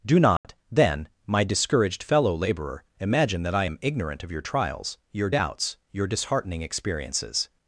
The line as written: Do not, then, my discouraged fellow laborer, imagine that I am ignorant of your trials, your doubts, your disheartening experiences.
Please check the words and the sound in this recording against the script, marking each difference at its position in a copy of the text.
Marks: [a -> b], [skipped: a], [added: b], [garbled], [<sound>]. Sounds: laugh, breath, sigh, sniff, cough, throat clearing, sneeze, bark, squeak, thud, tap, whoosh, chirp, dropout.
Do not, [dropout] then, my discouraged fellow laborer, imagine that I am ignorant of your trials, your doubts, your disheartening experiences.